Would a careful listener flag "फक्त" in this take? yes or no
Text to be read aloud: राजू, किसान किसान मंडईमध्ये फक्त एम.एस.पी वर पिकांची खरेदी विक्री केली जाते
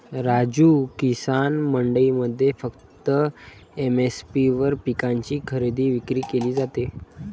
no